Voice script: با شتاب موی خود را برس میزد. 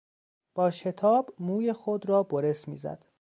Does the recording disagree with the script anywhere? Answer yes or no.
no